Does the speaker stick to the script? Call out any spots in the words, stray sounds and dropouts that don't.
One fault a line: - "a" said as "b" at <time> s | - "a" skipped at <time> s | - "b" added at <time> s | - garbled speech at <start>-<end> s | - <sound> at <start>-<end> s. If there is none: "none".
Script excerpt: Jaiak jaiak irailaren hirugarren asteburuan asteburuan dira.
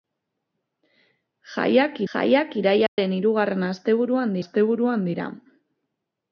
- dropout at 2.9-3.0 s